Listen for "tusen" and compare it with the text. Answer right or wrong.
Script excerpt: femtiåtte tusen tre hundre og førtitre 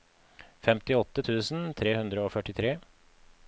right